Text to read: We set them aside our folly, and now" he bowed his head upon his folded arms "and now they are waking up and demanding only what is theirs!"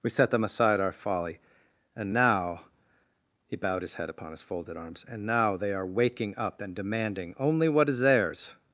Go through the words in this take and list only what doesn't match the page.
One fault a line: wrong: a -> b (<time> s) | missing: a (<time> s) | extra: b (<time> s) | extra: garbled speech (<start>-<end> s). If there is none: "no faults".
no faults